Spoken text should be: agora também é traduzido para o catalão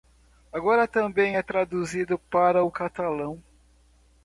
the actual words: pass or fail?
pass